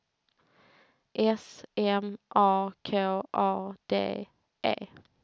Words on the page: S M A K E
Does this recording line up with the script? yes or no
no